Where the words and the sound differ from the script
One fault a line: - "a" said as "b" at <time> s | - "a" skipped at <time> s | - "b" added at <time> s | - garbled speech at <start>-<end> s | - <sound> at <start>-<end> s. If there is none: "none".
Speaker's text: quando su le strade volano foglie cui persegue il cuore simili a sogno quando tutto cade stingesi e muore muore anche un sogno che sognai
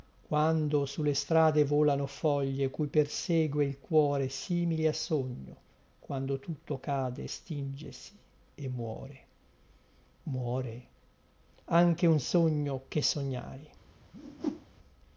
- whoosh at 14.1-14.7 s